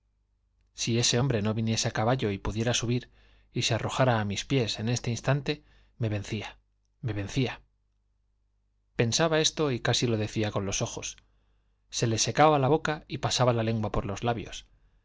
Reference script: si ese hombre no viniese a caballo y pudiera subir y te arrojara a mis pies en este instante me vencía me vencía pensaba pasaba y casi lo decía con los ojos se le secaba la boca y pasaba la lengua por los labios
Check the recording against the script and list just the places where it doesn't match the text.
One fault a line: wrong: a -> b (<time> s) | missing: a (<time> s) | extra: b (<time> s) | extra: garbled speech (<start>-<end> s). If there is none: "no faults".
wrong: te -> se (3.6 s)
wrong: pasaba -> esto (9.4 s)